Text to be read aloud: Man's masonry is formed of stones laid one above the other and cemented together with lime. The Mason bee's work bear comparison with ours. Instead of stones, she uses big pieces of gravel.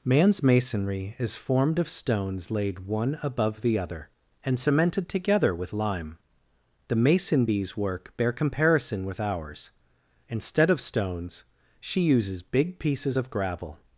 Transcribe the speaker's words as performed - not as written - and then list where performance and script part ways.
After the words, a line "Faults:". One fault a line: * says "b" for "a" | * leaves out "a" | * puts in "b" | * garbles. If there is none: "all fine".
Man's masonry is formed of stones laid one above the other and cemented together with lime. The Mason bee's work bear comparison with ours. Instead of stones, she uses big pieces of gravel.
Faults:
all fine